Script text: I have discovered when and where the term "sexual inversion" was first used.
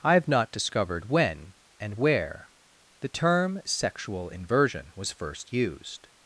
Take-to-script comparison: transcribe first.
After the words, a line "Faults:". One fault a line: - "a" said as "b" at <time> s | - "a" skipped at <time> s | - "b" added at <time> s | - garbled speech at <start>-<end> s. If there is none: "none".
I have not discovered when and where the term "sexual inversion" was first used.
Faults:
- "not" added at 0.3 s